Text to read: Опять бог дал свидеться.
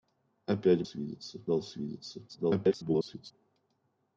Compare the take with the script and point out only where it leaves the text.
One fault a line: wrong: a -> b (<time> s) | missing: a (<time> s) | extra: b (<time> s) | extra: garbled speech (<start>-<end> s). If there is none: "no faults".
wrong: бог -> свидеться (0.8 s)
extra: garbled speech (2.3-3.3 s)